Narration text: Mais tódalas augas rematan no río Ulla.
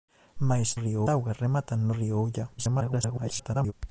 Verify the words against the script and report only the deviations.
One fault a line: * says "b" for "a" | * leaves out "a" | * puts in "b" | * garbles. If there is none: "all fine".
* says "río" for "tódalas"
* garbles